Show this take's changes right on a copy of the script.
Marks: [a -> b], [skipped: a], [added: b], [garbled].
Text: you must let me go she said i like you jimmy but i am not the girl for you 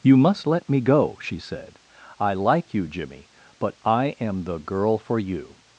you must let me go she said i like you jimmy but i am [skipped: not] the girl for you